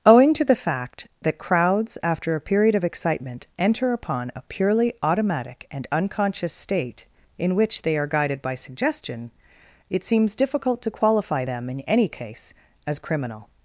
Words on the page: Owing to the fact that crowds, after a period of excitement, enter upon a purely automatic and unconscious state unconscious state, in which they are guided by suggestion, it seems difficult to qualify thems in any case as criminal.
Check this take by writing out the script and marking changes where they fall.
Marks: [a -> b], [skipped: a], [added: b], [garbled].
Owing to the fact that crowds, after a period of excitement, enter upon a purely automatic and unconscious state [skipped: unconscious state,] in which they are guided by suggestion, it seems difficult to qualify [thems -> them] in any case as criminal.